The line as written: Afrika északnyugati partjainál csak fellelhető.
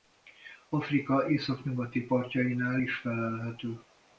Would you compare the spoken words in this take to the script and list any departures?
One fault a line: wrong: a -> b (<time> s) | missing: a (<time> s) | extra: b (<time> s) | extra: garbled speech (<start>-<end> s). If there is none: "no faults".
wrong: csak -> is (2.8 s)